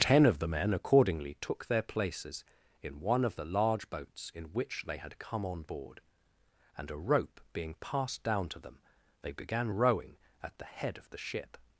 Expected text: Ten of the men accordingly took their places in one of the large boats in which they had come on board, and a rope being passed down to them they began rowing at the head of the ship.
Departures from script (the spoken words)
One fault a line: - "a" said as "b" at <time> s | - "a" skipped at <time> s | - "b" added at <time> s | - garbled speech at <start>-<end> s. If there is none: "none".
none